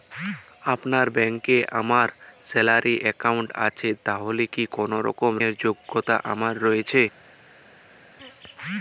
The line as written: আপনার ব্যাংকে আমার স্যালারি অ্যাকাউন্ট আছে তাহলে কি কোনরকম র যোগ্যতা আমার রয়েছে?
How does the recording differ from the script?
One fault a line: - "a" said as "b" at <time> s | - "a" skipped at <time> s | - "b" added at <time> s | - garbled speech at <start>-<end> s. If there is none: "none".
none